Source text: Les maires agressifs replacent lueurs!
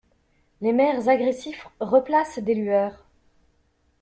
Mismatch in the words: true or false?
true